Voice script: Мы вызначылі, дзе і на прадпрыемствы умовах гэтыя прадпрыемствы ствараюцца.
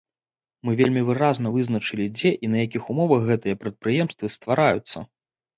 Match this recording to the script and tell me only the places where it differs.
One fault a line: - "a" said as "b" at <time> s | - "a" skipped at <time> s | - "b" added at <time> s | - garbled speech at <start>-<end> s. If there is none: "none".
- "вельмі выразна" added at 0.8 s
- "прадпрыемствы" said as "якіх" at 2.6 s